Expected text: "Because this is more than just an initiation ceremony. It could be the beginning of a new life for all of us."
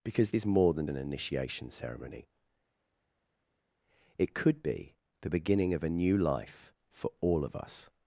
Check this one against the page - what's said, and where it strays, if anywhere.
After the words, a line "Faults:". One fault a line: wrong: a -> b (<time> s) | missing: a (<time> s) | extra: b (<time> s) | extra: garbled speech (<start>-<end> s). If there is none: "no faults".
"Because is more than an initiation ceremony. It could be the beginning of a new life for all of us."
Faults:
missing: this (0.3 s)
missing: just (0.9 s)